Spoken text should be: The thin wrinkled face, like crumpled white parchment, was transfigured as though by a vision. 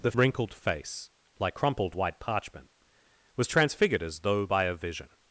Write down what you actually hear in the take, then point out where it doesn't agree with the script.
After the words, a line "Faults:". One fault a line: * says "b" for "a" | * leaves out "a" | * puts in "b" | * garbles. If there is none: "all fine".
The wrinkled face, like crumpled white parchment, was transfigured as though by a vision.
Faults:
* leaves out "thin"